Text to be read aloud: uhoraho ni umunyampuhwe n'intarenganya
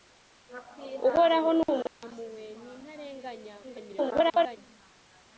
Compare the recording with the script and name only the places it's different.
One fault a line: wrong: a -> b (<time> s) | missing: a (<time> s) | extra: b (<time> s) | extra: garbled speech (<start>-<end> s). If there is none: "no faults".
extra: garbled speech (3.6-4.6 s)